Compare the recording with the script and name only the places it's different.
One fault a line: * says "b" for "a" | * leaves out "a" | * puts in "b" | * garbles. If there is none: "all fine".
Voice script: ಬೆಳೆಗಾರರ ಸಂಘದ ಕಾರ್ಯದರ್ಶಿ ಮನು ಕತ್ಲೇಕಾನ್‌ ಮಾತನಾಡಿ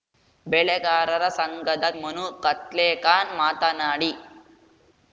* leaves out "ಕಾರ್ಯದರ್ಶಿ"